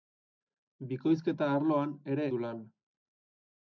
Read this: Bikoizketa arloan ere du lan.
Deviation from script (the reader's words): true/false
false